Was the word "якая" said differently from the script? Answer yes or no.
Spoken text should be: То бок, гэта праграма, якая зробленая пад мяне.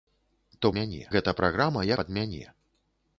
yes